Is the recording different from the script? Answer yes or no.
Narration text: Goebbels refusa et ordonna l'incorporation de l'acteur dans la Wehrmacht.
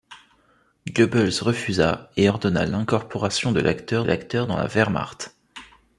yes